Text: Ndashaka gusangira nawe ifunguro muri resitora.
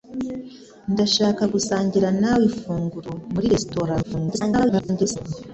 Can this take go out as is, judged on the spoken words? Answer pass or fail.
fail